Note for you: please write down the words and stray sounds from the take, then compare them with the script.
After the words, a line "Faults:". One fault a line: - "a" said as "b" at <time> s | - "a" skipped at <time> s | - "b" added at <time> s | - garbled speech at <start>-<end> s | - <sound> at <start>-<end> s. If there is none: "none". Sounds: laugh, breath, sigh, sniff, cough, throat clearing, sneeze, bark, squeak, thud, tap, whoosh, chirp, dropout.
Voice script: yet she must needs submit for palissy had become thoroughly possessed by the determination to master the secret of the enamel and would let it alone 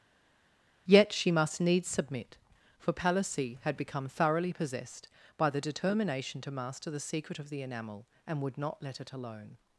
yet she must needs submit for palissy had become thoroughly possessed by the determination to master the secret of the enamel and would not let it alone
Faults:
- "not" added at 8.6 s